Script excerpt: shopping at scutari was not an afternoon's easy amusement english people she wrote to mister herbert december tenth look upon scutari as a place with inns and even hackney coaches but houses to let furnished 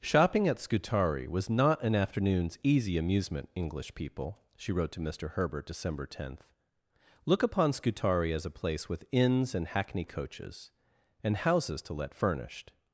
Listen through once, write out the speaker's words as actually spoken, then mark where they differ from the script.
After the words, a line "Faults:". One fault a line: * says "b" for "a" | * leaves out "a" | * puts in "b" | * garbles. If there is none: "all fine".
shopping at scutari was not an afternoon's easy amusement english people she wrote to mister herbert december tenth look upon scutari as a place with inns and hackney coaches and houses to let furnished
Faults:
* leaves out "even"
* says "and" for "but"